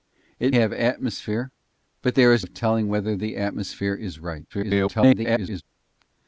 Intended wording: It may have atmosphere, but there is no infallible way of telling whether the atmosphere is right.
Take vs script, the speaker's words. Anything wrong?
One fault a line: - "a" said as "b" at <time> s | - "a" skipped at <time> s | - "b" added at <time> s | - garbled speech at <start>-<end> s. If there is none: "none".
- "may" skipped at 0.6 s
- "no infallible way" skipped at 2.5 s
- garbled speech at 4.5-5.6 s